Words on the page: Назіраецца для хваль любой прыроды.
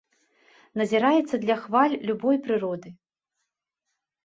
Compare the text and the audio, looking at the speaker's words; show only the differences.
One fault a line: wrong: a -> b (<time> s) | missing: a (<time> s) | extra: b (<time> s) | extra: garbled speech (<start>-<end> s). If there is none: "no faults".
no faults